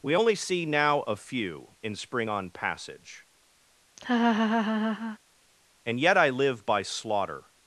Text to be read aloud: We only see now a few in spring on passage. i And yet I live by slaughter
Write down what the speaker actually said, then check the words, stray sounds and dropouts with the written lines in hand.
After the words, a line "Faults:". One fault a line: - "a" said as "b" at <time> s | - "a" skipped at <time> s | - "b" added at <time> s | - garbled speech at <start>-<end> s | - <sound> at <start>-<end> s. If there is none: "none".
We only see now a few in spring on passage. And yet I live by slaughter
Faults:
- "i" skipped at 3.3 s
- laugh at 4.0-5.2 s